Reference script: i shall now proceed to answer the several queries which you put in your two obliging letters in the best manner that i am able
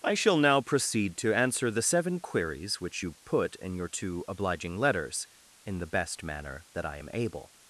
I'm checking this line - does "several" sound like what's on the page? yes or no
no